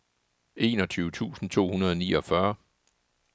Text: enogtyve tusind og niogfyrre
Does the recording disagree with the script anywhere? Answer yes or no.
yes